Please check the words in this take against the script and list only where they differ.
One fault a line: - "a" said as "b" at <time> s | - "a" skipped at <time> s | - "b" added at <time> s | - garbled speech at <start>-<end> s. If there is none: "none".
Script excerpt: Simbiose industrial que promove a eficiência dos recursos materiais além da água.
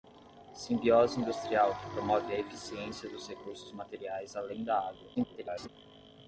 - garbled speech at 5.1-5.7 s